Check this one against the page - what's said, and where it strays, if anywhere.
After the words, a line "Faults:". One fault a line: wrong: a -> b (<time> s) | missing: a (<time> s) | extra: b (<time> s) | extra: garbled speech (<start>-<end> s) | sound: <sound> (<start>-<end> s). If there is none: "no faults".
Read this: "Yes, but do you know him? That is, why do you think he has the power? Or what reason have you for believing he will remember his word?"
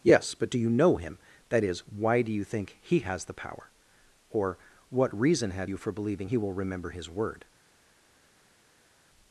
"Yes, but do you know him? That is, why do you think he has the power? Or what reason have you for believing he will remember his word?"
Faults:
no faults